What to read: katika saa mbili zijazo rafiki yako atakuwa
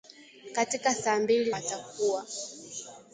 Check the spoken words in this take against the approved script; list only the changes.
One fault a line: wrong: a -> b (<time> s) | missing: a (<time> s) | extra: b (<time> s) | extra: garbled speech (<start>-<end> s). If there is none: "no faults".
missing: zijazo rafiki yako (1.5 s)